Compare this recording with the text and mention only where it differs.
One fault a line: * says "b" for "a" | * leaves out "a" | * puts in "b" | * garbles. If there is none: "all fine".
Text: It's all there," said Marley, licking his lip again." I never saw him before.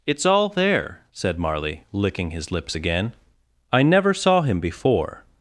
* says "lips" for "lip"